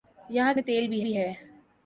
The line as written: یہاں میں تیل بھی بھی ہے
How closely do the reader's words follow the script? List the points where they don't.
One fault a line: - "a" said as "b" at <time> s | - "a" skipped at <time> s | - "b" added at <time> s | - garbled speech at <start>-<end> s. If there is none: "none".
none